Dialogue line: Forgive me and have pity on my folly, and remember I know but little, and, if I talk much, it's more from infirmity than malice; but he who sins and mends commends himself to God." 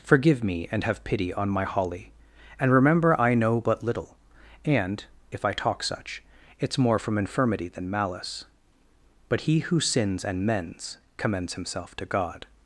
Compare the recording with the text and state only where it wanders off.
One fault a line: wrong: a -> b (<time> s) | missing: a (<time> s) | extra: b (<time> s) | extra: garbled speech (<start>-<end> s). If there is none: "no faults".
wrong: folly -> holly (1.6 s)
wrong: much -> such (5.8 s)